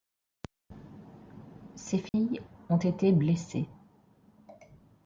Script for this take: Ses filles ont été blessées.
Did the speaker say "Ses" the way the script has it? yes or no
yes